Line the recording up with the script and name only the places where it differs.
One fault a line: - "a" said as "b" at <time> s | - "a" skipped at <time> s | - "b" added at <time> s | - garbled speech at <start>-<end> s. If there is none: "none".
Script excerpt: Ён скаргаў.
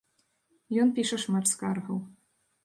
- "піша шмат" added at 0.9 s